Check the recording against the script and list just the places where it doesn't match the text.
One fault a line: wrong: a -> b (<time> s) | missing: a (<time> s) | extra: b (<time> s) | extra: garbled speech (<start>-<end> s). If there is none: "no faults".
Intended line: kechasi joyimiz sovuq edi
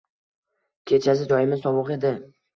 no faults